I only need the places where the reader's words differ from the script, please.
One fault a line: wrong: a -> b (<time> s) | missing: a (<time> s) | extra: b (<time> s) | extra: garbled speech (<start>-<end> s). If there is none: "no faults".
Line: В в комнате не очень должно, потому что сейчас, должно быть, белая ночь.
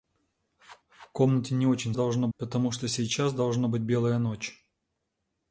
no faults